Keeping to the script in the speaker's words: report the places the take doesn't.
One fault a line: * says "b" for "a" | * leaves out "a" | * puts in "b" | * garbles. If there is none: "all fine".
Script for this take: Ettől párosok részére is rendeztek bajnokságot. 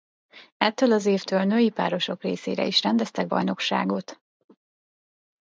* puts in "az évtől női"